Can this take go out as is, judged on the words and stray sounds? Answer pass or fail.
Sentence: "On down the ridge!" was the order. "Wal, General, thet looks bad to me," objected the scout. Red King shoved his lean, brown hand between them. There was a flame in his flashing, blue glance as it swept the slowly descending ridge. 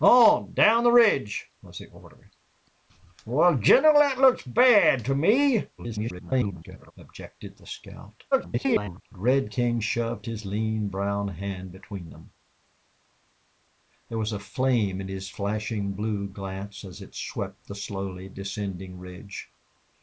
fail